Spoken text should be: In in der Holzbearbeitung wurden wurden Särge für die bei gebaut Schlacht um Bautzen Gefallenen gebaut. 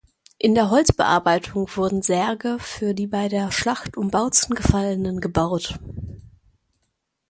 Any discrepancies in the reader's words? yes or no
yes